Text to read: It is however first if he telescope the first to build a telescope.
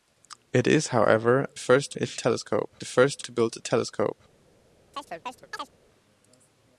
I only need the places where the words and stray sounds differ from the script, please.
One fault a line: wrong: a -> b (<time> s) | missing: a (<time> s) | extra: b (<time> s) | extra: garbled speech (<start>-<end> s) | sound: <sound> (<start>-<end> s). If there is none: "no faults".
sound: chirp (4.9-5.7 s)